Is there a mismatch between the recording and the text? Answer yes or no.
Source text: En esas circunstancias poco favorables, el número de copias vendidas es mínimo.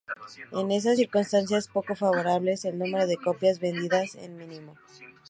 no